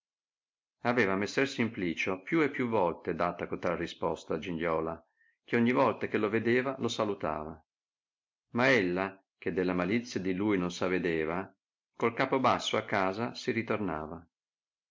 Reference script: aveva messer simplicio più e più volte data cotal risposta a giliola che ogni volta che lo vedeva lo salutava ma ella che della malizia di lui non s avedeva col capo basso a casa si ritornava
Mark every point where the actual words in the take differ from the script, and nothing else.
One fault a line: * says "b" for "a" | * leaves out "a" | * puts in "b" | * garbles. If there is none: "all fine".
all fine